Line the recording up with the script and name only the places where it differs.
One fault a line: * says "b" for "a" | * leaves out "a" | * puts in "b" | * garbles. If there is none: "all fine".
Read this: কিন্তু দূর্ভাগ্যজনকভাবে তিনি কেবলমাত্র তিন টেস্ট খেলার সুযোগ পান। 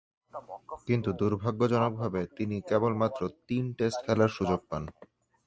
all fine